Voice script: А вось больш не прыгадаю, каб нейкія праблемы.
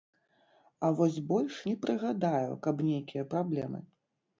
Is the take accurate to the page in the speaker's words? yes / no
yes